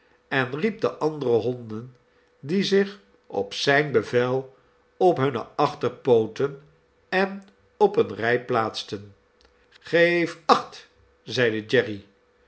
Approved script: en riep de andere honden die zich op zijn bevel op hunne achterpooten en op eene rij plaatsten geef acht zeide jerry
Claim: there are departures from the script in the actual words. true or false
false